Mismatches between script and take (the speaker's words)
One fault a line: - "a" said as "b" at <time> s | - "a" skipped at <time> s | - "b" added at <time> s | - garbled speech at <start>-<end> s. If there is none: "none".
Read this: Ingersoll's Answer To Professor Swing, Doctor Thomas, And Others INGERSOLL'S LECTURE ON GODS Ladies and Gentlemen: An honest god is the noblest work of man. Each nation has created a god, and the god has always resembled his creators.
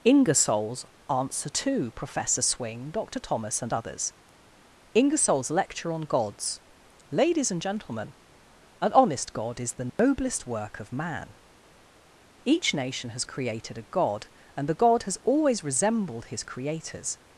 none